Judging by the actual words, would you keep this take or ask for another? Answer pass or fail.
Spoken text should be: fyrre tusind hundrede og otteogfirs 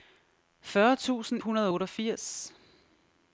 pass